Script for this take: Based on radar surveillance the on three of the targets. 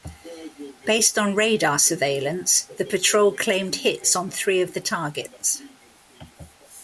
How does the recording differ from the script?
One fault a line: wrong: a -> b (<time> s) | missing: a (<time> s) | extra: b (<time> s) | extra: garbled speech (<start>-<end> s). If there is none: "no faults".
extra: patrol claimed hits (2.8 s)